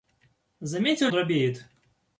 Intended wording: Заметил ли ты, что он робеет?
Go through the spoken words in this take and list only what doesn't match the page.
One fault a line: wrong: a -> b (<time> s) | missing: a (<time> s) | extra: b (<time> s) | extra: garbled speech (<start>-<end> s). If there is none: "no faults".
missing: ли ты что (1.1 s)